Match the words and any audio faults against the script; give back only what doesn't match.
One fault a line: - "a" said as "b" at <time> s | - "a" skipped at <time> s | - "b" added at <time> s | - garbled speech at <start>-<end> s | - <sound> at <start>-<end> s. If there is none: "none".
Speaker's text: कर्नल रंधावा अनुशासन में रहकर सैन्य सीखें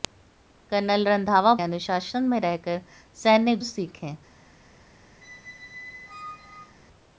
- squeak at 5.2-6.7 s